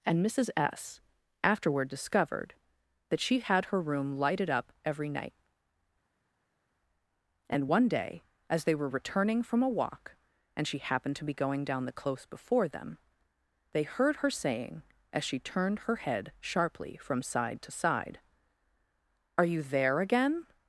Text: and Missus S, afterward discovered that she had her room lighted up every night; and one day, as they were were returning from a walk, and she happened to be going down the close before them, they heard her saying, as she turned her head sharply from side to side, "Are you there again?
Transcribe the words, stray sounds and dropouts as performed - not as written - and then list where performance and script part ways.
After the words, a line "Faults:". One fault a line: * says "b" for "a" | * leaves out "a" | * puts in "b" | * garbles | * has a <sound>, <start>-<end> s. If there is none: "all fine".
and Missus S, afterward discovered that she had her room lighted up every night; and one day, as they were returning from a walk, and she happened to be going down the close before them, they heard her saying, as she turned her head sharply from side to side, "Are you there again?
Faults:
* leaves out "were"